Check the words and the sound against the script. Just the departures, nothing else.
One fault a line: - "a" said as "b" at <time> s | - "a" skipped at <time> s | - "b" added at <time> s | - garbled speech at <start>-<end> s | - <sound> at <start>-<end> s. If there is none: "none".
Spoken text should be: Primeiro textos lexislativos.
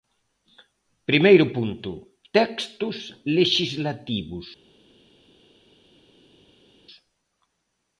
- "punto" added at 1.5 s